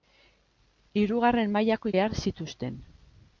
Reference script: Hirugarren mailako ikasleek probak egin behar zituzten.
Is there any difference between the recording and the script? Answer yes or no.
yes